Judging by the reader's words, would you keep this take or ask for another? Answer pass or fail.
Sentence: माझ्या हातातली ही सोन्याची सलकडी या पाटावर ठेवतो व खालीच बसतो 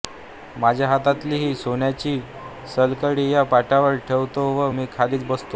fail